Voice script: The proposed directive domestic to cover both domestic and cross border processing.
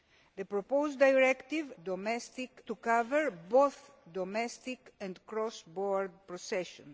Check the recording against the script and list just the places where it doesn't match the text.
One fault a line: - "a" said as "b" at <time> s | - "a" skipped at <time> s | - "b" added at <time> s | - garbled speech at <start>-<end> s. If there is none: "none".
none